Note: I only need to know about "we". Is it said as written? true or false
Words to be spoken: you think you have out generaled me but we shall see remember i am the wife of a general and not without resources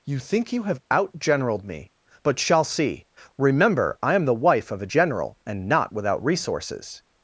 false